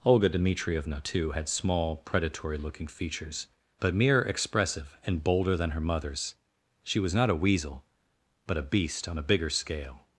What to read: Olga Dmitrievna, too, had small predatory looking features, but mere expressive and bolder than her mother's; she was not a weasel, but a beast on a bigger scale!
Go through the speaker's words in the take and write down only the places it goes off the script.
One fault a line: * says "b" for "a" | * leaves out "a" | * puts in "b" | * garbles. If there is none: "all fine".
all fine